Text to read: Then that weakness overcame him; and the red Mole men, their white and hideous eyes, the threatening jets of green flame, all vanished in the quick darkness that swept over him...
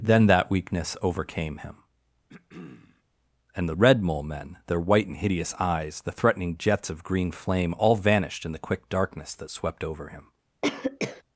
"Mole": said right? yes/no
yes